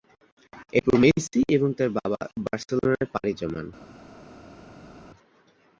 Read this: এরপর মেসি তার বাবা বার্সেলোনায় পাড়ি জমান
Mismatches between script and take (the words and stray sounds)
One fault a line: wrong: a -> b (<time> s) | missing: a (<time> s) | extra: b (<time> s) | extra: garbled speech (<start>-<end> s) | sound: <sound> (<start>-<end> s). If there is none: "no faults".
extra: এবং (1.6 s)